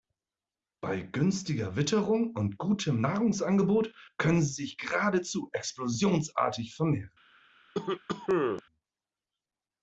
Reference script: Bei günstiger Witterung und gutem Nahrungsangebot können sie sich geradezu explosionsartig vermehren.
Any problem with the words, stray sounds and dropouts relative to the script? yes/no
yes